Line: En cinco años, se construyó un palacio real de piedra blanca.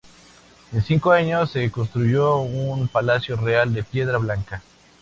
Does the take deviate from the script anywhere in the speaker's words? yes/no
no